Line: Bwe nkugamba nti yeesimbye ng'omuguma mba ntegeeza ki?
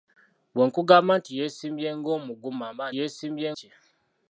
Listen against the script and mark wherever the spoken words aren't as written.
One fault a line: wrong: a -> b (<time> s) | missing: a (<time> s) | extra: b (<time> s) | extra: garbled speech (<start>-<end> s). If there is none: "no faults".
wrong: ntegeeza -> yeesimbye (3.0 s)